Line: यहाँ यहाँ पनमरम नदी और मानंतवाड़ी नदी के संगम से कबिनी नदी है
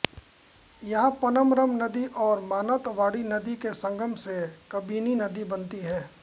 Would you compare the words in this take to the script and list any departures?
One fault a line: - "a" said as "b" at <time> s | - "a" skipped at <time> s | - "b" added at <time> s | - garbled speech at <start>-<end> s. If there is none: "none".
- "यहाँ" skipped at 1.1 s
- "बनती" added at 5.5 s